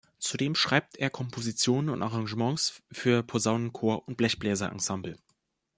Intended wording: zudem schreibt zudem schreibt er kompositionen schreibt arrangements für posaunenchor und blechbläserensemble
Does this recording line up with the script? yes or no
no